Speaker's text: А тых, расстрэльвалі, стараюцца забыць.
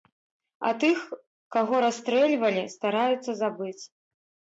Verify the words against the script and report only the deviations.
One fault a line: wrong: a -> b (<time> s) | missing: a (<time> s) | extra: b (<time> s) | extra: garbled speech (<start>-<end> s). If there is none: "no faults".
extra: каго (1.6 s)